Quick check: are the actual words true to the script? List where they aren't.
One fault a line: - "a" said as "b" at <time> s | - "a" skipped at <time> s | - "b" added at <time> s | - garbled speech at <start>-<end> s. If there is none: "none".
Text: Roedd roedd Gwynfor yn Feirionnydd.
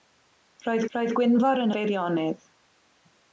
none